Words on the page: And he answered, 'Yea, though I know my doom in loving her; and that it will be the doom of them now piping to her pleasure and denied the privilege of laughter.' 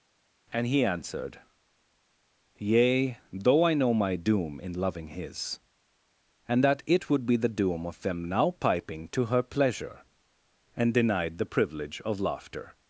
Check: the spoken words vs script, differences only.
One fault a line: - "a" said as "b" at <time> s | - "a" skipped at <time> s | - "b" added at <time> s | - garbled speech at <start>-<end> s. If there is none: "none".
- "her" said as "his" at 5.1 s
- "will" said as "would" at 7.1 s